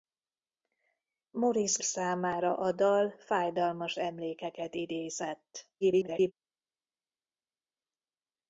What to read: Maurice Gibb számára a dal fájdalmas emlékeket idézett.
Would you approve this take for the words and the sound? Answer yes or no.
no